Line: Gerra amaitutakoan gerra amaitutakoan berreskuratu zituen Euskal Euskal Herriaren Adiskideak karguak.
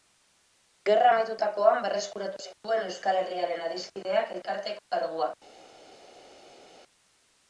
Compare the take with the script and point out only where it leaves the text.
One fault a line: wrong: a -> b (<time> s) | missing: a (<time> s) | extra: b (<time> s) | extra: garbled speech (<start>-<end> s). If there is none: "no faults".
missing: gerra amaitutakoan (1.8 s)
missing: Euskal (3.2 s)
extra: elkarteko (4.4 s)